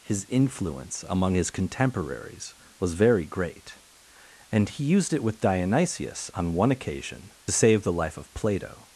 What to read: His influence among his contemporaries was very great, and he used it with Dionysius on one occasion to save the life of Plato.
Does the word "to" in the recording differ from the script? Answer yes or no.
yes